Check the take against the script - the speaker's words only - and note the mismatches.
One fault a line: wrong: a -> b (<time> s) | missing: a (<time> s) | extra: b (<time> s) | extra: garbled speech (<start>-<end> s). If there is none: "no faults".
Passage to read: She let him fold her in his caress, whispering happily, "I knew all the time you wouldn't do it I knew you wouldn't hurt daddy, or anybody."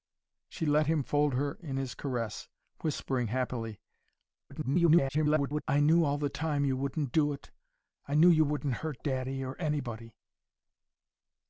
extra: garbled speech (4.5-5.6 s)